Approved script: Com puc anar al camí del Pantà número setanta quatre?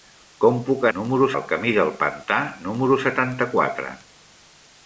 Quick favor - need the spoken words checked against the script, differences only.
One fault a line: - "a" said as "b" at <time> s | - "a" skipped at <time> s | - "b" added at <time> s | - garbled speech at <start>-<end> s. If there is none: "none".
- "anar" said as "número" at 1.0 s